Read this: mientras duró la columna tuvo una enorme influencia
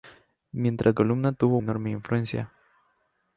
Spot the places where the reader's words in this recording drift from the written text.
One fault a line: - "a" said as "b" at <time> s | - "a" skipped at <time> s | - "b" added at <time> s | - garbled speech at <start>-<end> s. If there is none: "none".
- "duró la" skipped at 0.9 s
- "una" skipped at 1.6 s